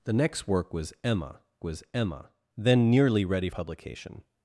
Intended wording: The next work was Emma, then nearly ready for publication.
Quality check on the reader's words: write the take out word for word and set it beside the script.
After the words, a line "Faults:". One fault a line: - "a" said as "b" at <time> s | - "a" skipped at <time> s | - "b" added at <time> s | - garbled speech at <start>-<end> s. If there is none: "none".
The next work was Emma was Emma, then nearly ready publication.
Faults:
- "was Emma" added at 1.6 s
- "for" skipped at 3.5 s